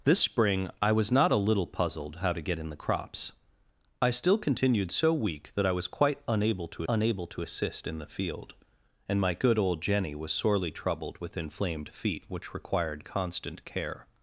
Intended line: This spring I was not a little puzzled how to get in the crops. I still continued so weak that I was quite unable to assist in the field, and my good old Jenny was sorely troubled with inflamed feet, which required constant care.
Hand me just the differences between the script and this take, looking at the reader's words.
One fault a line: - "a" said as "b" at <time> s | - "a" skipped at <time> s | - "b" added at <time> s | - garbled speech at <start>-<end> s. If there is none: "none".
- "unable to" added at 6.9 s